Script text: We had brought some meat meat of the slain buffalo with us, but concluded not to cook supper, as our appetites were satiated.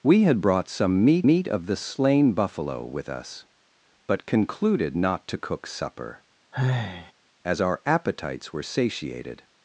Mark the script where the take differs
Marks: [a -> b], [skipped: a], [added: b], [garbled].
We had brought some meat meat of the slain buffalo with us, but concluded not to cook supper, as our appetites were satiated.